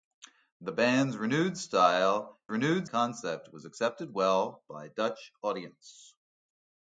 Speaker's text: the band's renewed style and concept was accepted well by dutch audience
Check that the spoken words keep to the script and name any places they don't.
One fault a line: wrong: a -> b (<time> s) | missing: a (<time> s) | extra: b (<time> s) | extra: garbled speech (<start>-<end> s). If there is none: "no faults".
wrong: and -> renewed (2.5 s)